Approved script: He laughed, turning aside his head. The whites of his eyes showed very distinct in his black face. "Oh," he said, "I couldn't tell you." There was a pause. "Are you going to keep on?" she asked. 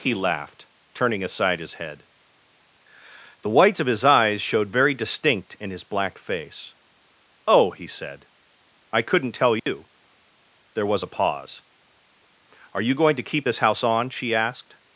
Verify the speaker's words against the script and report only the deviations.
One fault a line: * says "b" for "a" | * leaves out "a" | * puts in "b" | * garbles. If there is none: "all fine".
* puts in "this house"